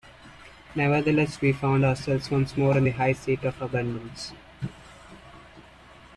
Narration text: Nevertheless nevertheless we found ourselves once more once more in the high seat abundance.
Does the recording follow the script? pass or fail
fail